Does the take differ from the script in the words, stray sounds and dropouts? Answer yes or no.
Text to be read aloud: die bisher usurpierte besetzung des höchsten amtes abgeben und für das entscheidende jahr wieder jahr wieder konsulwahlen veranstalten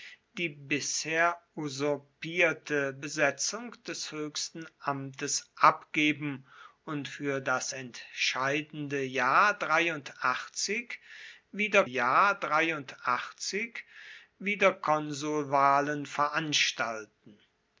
no